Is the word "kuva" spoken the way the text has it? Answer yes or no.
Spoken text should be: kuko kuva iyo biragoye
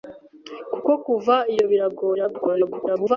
yes